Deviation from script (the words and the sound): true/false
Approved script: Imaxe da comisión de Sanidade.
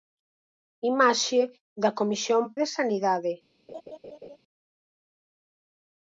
true